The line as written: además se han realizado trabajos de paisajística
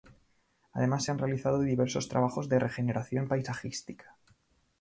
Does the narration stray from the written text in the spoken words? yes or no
yes